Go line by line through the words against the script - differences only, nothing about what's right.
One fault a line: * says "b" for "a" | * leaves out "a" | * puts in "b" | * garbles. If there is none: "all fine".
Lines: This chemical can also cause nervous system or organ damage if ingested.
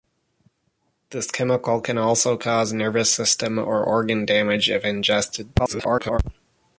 * garbles